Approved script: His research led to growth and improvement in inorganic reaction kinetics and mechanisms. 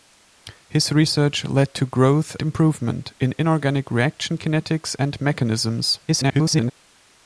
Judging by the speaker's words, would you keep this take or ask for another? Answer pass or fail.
fail